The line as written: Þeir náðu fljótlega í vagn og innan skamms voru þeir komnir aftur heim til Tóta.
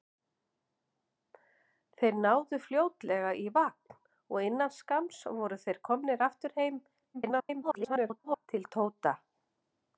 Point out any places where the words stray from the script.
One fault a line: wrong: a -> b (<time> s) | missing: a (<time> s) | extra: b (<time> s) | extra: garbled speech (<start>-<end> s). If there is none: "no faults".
extra: garbled speech (7.1-8.5 s)